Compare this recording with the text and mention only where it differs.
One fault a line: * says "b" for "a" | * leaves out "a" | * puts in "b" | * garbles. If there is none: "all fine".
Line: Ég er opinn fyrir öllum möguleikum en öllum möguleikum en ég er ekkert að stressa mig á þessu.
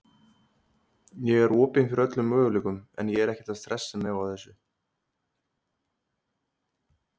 * leaves out "öllum möguleikum en"